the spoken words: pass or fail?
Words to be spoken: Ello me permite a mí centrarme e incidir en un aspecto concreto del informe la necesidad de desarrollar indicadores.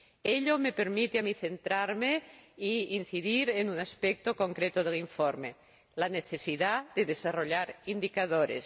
pass